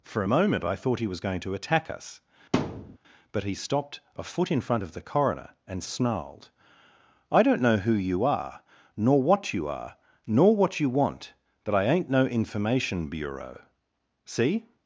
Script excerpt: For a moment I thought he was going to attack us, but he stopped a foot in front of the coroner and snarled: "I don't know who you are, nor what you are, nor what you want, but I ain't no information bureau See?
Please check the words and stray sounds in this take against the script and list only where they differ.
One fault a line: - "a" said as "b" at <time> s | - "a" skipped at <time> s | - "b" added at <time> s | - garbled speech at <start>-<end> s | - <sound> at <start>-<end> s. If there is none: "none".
- thud at 2.5-3.0 s